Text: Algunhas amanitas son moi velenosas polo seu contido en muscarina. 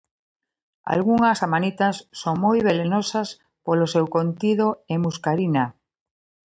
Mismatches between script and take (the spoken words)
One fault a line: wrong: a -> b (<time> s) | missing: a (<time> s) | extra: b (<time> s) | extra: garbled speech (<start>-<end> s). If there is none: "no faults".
no faults